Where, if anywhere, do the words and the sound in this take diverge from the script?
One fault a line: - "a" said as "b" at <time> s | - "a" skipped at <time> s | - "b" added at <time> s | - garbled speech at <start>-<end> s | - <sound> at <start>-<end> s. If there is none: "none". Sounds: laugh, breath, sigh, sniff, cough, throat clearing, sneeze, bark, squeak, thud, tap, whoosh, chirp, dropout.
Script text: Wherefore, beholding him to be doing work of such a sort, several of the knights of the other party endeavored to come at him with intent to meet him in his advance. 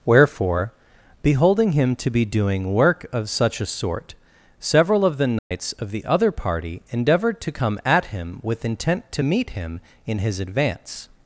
- dropout at 5.4-5.5 s